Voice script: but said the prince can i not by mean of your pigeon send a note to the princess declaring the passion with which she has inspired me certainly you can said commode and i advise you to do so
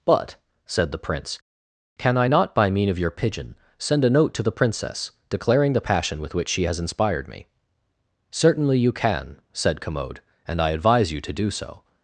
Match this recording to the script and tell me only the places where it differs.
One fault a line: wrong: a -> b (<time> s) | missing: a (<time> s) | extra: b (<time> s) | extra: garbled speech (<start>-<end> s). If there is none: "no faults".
no faults